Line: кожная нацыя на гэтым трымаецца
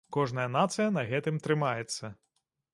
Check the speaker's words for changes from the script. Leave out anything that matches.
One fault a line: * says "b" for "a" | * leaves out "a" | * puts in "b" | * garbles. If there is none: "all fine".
all fine